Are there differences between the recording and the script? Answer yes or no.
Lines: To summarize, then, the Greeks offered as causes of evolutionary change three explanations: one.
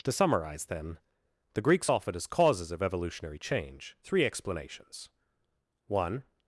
no